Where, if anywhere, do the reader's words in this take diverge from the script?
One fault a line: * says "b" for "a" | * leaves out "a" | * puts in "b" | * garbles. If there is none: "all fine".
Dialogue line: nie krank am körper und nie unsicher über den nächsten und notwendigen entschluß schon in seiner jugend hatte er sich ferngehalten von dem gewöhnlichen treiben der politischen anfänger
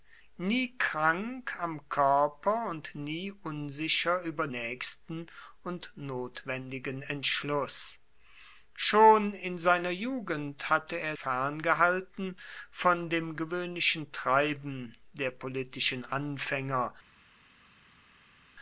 * leaves out "den"
* leaves out "sich"